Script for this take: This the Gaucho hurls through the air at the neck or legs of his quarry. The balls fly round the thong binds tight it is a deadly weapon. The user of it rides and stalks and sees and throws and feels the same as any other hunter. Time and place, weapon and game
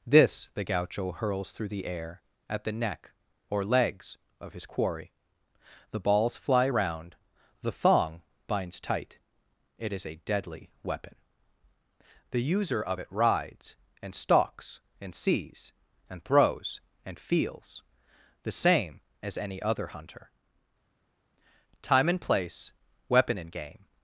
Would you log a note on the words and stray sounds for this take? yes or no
no